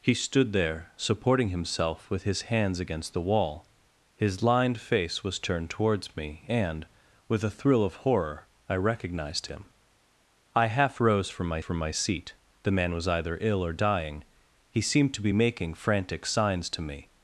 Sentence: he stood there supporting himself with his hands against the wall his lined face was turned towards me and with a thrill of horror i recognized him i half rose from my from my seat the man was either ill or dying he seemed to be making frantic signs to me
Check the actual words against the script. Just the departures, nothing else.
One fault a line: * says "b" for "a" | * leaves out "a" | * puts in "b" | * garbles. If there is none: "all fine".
all fine